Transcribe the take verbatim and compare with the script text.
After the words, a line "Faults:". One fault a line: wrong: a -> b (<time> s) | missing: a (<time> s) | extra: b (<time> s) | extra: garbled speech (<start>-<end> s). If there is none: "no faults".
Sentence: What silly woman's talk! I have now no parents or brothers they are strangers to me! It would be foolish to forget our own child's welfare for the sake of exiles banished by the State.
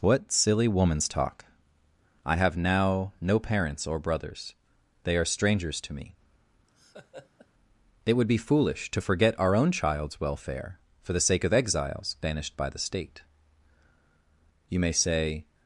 What silly woman's talk! I have now no parents or brothers they are strangers to me! It would be foolish to forget our own child's welfare for the sake of exiles banished by the State. You may say
Faults:
extra: You may say (14.7 s)